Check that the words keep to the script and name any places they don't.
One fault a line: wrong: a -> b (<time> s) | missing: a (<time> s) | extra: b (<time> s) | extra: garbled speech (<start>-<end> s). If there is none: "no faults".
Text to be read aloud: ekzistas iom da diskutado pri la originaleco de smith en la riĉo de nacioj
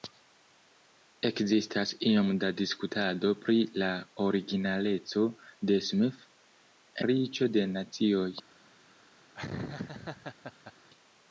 missing: en la (6.3 s)